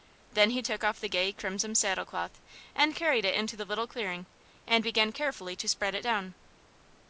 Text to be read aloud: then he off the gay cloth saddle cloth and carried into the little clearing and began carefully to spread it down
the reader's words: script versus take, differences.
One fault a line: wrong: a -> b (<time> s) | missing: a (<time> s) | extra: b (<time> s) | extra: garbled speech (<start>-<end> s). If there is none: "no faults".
extra: took (0.6 s)
wrong: cloth -> crimson (1.3 s)
extra: it (3.2 s)